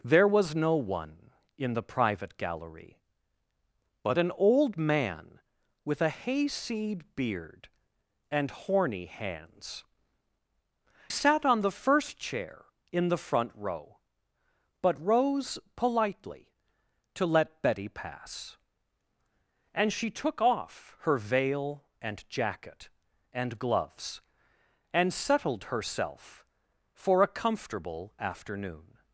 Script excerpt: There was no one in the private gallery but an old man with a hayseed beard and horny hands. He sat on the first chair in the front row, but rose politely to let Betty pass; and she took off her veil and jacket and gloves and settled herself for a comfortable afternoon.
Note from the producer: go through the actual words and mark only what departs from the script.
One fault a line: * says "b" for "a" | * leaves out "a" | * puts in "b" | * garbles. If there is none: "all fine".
* leaves out "He"